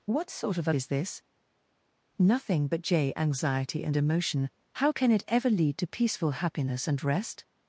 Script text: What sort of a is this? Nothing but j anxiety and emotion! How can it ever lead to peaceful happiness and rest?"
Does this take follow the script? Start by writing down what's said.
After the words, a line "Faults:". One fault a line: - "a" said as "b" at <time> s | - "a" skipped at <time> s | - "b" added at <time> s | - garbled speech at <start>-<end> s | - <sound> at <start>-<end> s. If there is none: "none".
What sort of a is this? Nothing but j anxiety and emotion! How can it ever lead to peaceful happiness and rest?"
Faults:
none